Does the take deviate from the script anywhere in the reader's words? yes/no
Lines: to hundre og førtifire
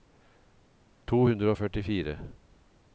no